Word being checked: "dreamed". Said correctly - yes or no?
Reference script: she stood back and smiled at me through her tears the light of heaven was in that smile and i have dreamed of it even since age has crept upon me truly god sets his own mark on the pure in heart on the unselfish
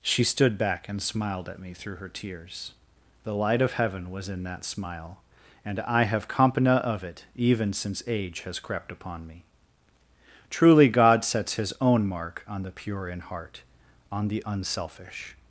no